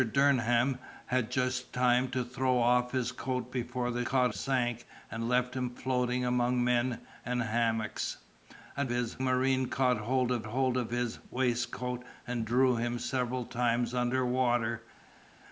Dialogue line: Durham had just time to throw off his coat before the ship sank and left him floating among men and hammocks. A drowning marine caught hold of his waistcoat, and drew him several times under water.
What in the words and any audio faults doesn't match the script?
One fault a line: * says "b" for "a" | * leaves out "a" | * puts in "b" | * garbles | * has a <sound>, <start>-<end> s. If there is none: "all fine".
* says "caught" for "ship"
* says "his" for "drowning"
* puts in "hold of"